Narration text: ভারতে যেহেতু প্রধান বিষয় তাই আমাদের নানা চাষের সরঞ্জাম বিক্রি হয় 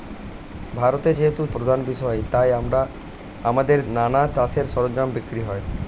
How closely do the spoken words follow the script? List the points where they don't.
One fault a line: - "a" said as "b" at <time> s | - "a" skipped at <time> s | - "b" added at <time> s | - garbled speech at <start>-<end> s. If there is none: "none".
none